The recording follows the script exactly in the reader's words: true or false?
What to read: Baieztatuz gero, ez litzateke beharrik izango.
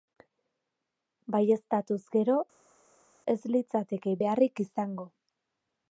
true